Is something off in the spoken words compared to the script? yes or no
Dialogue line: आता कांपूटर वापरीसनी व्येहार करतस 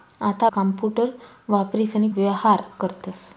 no